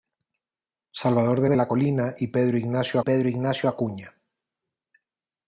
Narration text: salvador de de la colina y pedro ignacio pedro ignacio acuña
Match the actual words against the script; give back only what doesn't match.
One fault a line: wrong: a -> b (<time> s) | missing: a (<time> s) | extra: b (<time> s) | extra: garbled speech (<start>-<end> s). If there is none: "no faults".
no faults